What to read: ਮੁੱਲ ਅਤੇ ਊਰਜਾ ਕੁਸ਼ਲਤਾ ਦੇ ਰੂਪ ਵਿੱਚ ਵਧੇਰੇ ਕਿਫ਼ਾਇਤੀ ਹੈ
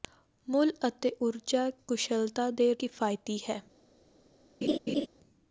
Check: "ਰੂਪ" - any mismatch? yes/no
yes